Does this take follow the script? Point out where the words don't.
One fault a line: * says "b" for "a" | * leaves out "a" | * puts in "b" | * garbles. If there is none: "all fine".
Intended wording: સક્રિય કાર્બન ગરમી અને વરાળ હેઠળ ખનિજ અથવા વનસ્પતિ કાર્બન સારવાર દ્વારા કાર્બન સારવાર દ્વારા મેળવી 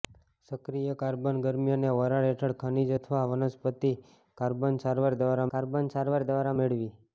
all fine